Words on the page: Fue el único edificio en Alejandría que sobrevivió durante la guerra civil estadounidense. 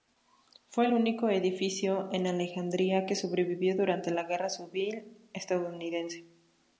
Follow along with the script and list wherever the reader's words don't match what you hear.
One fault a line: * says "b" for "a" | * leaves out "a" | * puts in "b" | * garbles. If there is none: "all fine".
all fine